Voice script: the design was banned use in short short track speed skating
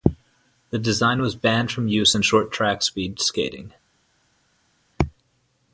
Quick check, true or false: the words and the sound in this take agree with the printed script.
false